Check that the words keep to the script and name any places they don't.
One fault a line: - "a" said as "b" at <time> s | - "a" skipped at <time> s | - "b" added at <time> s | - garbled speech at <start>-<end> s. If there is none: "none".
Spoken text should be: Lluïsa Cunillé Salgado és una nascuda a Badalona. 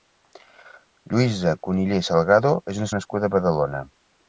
none